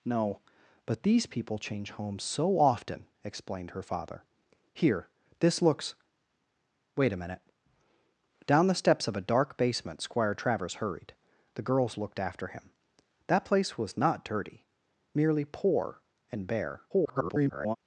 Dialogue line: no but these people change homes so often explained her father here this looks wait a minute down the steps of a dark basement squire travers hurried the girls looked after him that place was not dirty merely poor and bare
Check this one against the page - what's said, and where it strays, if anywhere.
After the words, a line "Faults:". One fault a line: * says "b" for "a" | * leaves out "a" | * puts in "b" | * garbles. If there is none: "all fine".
no but these people change homes so often explained her father here this looks wait a minute down the steps of a dark basement squire travers hurried the girls looked after him that place was not dirty merely poor and bare [garbled]
Faults:
* garbles